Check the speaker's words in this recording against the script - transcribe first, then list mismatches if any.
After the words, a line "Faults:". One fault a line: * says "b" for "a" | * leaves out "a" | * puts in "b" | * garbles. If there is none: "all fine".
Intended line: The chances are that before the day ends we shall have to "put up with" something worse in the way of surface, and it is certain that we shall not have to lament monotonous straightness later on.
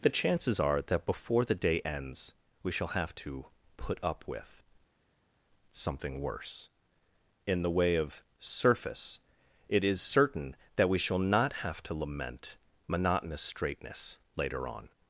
The chances are that before the day ends we shall have to "put up with" something worse in the way of surface, it is certain that we shall not have to lament monotonous straightness later on.
Faults:
* leaves out "and"